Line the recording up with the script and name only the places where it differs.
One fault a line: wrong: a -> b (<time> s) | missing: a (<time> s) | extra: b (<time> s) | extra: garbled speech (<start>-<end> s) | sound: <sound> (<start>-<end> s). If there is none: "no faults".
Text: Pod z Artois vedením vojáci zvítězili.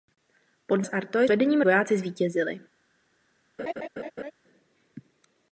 sound: laugh (3.6-4.3 s)